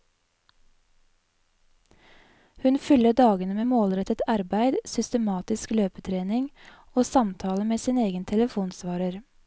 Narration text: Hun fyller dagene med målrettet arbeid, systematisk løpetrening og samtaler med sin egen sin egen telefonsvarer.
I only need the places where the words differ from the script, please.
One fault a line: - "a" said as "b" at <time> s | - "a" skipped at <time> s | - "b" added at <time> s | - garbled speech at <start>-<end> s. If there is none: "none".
- "sin egen" skipped at 8.2 s